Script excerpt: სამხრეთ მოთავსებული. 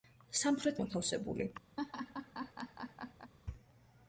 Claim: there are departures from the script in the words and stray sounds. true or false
true